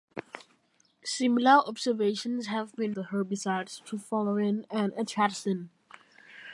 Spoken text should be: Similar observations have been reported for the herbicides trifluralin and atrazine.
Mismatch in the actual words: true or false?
true